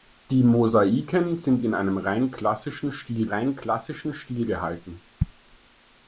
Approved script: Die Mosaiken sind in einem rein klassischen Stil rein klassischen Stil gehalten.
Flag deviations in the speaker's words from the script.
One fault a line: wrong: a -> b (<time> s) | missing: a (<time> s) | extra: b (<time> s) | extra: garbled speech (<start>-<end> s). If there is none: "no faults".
no faults